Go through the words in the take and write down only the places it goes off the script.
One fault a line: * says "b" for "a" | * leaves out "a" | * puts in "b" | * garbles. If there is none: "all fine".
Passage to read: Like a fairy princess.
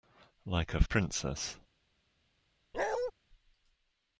* leaves out "fairy"